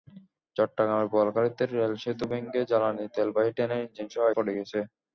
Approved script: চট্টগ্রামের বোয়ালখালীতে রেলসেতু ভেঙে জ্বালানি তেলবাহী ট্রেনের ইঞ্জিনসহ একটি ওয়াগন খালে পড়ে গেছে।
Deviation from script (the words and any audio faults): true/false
true